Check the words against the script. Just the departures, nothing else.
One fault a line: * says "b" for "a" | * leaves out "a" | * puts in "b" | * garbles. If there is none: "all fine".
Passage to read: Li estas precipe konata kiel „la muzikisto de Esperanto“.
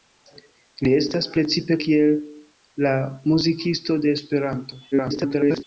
* leaves out "konata"
* garbles